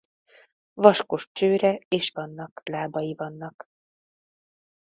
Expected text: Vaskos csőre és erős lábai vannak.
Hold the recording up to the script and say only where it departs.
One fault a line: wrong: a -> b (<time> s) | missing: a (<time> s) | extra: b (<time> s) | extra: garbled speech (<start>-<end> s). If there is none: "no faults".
wrong: erős -> vannak (2.1 s)